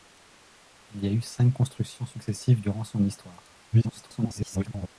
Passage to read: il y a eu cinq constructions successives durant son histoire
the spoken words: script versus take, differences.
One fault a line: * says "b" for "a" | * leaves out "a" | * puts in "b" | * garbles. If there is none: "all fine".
* garbles